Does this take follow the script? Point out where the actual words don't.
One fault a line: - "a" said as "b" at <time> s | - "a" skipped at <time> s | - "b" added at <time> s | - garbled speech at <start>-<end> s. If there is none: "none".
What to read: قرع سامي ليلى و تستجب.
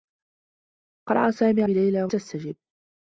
none